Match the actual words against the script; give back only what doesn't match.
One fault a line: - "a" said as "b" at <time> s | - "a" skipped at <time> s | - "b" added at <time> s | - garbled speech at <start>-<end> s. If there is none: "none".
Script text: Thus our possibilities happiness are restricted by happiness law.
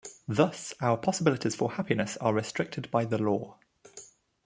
- "for" added at 1.6 s
- "happiness" said as "the" at 3.0 s